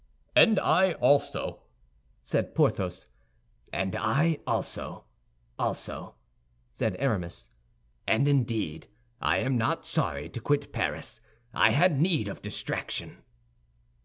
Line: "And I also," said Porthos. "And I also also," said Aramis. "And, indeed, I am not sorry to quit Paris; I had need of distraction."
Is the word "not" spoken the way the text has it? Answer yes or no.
yes